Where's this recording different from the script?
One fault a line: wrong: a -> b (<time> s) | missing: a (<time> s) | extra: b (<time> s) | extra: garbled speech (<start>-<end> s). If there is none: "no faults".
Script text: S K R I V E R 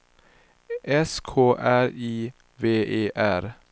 no faults